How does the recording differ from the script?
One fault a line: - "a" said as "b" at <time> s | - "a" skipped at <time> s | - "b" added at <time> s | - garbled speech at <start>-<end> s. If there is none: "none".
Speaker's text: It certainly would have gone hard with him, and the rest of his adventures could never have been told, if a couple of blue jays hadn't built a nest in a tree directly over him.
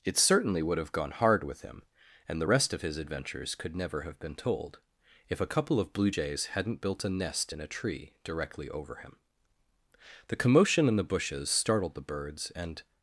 - "The commotion in the bushes startled the birds and" added at 10.3 s